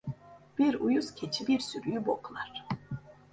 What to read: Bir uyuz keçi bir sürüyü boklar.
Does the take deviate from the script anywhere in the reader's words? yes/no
no